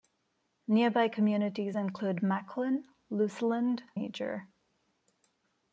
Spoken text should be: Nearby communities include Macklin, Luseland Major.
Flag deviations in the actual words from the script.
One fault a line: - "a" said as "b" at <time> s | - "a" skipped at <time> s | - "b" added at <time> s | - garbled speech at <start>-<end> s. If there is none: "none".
none